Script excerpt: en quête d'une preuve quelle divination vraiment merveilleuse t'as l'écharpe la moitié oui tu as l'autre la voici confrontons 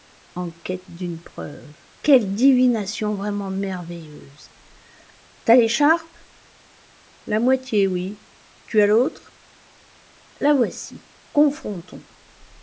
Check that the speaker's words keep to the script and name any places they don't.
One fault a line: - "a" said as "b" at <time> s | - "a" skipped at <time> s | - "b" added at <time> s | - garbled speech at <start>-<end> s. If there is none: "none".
none